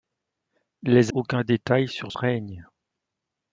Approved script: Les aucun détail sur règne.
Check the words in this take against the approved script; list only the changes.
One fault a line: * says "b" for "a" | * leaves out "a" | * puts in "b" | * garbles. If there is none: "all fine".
all fine